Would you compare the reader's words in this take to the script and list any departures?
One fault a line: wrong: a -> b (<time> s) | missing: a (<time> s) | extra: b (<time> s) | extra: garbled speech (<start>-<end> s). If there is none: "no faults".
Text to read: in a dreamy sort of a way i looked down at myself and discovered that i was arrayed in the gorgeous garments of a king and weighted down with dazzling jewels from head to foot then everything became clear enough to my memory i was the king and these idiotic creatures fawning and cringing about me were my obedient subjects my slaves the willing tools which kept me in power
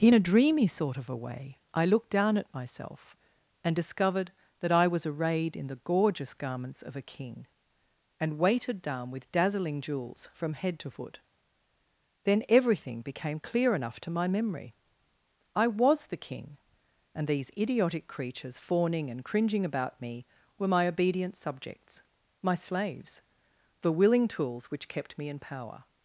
no faults